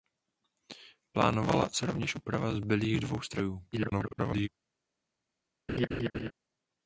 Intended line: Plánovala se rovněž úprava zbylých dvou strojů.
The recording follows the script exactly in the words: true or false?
false